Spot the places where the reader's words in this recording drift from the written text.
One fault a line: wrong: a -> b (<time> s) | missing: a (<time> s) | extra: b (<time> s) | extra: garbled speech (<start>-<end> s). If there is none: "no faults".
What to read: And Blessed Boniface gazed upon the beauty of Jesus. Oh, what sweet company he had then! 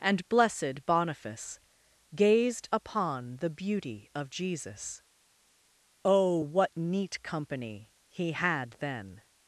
wrong: sweet -> neat (6.8 s)